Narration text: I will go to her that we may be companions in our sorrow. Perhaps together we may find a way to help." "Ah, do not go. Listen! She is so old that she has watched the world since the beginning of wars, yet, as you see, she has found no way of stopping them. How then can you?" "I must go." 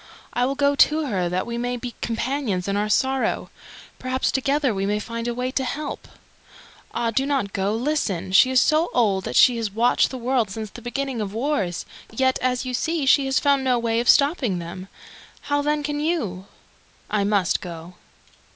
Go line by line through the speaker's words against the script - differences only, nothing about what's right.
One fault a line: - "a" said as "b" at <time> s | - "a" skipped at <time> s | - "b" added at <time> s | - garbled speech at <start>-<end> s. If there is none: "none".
none